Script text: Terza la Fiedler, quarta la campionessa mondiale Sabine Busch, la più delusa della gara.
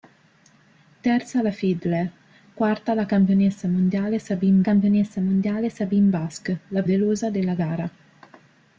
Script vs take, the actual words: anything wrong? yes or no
yes